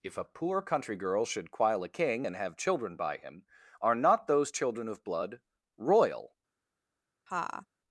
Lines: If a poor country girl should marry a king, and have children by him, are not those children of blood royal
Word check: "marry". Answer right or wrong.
wrong